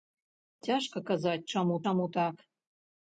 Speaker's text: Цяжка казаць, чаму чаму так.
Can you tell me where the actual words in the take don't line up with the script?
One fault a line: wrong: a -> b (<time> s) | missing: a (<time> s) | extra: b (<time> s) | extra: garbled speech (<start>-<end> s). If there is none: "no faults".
no faults